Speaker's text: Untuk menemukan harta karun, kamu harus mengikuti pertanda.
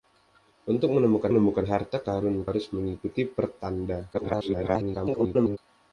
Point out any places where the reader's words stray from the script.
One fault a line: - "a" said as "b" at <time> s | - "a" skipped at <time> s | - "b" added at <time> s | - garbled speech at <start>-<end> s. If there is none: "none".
- "menemukan" added at 1.3 s
- "kamu" skipped at 2.5 s
- garbled speech at 4.1-5.6 s